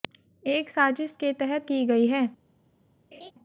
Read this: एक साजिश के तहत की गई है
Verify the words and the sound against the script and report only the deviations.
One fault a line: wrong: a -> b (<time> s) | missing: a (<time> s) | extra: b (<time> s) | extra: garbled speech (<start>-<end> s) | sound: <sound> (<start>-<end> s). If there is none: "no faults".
sound: laugh (3.1-3.3 s)